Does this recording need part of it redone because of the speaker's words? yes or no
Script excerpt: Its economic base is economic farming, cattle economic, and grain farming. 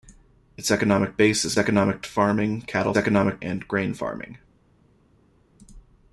no